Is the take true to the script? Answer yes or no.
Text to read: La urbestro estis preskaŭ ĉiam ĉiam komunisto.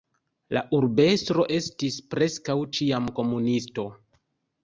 no